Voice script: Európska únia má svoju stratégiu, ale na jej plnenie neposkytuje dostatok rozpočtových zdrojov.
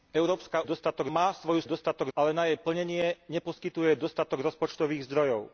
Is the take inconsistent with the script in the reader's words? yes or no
yes